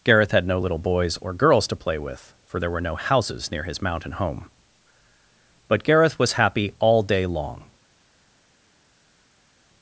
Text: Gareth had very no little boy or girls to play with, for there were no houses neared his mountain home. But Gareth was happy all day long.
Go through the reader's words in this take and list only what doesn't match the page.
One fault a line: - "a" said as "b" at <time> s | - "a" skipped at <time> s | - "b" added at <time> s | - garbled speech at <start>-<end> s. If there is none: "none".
- "very" skipped at 0.5 s
- "boy" said as "boys" at 0.8 s
- "neared" said as "near" at 3.5 s